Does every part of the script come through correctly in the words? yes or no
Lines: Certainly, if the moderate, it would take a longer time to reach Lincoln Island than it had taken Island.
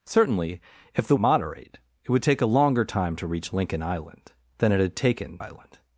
yes